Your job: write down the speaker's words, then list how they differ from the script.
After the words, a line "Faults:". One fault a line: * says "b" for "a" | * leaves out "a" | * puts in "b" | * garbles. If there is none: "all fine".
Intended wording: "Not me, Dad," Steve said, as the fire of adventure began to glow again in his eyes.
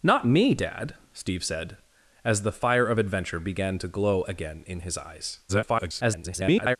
"Not me, Dad," Steve said, as the fire of adventure began to glow again in his eyes. [garbled]
Faults:
* garbles